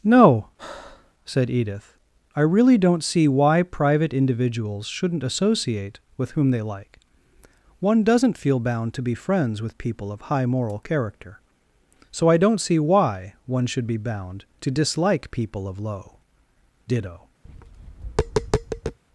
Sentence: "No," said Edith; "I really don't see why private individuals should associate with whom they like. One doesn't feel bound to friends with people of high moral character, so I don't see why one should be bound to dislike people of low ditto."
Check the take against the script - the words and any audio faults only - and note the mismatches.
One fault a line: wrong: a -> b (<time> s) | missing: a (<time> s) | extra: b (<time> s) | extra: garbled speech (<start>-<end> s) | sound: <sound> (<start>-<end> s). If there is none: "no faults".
sound: breath (0.6-1.1 s)
wrong: should -> shouldn't (4.9 s)
extra: be (9.0 s)
sound: tap (17.5-19.0 s)